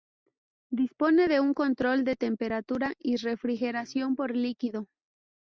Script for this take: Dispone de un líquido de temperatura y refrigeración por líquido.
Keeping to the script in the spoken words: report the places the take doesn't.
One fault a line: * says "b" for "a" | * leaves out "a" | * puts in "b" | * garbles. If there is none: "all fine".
* says "control" for "líquido"